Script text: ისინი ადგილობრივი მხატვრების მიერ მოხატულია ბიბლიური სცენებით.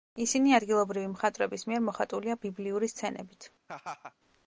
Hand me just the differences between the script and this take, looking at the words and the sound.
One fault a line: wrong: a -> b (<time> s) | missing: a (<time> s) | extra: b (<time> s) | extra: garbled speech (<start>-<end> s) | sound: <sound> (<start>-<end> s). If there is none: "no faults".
sound: laugh (3.7-4.1 s)